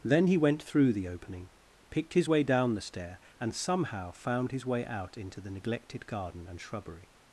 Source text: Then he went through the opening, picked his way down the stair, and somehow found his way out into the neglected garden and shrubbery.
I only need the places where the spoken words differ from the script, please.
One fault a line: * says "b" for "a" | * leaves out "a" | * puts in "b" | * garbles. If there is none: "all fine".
all fine